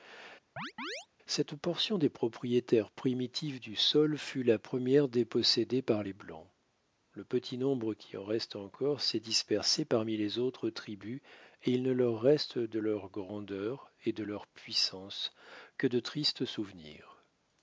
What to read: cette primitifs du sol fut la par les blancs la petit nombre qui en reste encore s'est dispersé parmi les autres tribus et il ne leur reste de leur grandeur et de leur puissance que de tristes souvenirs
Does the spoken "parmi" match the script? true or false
true